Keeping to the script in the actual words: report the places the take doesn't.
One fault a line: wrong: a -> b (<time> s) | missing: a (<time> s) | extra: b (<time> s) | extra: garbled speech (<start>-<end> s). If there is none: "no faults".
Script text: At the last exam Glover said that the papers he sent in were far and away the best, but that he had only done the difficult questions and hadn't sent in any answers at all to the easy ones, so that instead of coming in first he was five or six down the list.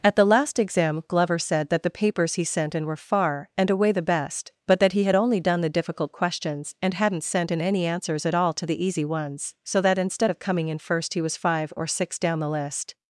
no faults